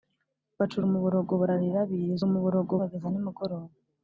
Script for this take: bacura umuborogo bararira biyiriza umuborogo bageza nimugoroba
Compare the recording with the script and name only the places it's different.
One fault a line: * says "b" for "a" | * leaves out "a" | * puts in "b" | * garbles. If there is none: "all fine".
all fine